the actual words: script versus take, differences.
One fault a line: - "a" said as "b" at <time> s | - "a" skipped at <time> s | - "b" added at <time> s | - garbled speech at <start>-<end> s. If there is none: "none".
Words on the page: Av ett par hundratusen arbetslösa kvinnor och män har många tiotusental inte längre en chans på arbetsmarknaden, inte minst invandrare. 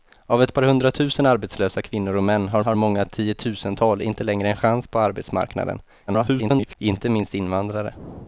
- "har" added at 2.6 s
- garbled speech at 6.1-6.8 s